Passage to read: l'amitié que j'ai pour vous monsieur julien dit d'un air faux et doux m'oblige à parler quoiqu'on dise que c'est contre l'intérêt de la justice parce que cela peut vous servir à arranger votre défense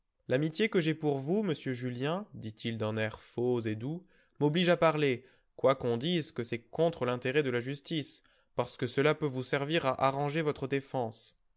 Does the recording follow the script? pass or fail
fail